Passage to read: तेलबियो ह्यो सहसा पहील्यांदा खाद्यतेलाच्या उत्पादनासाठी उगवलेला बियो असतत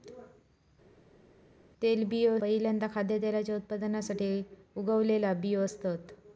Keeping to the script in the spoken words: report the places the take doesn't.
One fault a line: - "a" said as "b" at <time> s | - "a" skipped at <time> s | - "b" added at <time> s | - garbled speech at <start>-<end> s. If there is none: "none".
- "ह्यो सहसा" skipped at 2.4 s